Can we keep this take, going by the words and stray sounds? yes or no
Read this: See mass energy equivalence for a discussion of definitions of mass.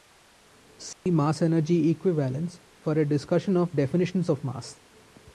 no